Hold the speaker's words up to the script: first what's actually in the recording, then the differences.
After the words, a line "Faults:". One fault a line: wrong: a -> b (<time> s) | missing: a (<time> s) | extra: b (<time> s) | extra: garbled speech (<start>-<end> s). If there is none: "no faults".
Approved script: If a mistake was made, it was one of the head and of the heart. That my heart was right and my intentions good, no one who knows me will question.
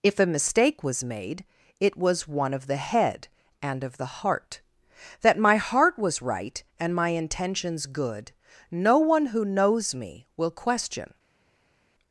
If a mistake was made, it was one of the head and of the heart. That my heart was right and my intentions good, no one who knows me will question.
Faults:
no faults